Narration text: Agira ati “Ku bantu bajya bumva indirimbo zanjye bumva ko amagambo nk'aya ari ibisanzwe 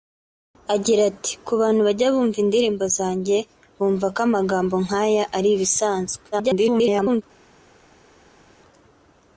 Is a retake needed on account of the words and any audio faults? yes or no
yes